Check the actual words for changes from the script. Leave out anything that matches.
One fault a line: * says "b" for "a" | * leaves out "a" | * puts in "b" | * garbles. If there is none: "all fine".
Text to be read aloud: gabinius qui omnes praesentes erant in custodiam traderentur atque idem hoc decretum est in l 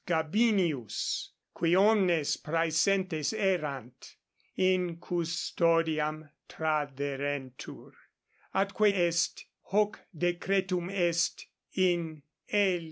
* says "est" for "idem"